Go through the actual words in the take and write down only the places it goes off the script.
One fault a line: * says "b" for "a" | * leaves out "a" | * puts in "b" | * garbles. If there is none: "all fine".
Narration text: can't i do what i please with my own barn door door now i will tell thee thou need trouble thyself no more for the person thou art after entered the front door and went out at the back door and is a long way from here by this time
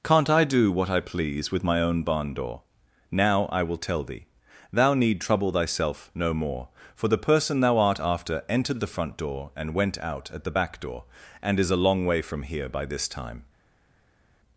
* leaves out "door"